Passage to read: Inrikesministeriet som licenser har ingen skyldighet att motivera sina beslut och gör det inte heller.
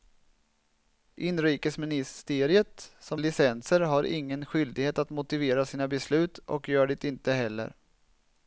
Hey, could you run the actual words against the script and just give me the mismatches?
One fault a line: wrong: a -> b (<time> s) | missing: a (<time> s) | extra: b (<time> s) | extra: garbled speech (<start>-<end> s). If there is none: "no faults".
no faults